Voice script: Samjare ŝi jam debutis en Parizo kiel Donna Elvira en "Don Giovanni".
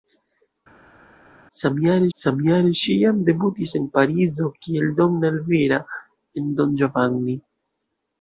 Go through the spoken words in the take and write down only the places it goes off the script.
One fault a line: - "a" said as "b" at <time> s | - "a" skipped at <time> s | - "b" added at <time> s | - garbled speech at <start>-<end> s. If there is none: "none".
- "samjare" added at 2.2 s